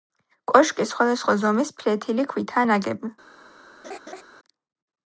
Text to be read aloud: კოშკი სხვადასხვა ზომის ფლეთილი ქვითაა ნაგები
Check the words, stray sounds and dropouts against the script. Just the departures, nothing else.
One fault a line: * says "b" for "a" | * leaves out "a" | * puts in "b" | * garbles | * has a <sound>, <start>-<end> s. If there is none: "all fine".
* has a laugh, 3.8-4.2 s